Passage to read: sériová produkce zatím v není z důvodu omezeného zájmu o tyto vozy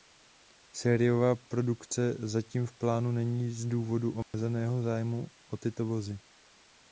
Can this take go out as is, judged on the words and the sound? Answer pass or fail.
fail